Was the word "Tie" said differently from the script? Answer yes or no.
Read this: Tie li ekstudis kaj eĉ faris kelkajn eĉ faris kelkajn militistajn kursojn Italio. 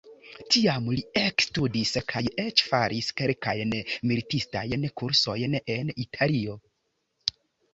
yes